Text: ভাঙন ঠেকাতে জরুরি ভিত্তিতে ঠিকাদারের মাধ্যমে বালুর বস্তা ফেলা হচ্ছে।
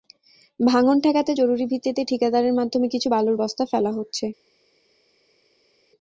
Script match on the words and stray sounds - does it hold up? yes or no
no